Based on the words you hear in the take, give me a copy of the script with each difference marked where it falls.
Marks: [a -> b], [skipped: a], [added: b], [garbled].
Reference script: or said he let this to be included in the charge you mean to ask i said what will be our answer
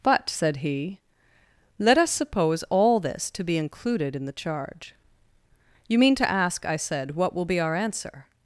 [or -> but] said he let [added: us suppose all] this to be included in the charge you mean to ask i said what will be our answer